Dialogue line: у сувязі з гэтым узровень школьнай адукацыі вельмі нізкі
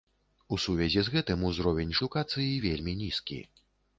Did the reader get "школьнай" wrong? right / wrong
wrong